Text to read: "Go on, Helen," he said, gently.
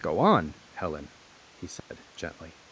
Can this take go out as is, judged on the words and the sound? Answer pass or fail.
fail